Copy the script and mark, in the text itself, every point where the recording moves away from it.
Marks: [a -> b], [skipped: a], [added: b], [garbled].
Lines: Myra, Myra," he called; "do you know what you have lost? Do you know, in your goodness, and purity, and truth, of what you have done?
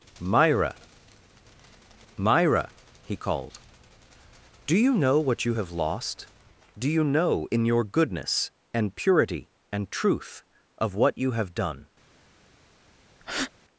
Myra, Myra," he called; "do you know what you have lost? Do you know, in your goodness, and purity, and truth, of what you have done?